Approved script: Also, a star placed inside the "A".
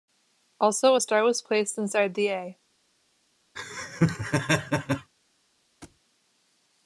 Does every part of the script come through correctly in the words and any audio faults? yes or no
no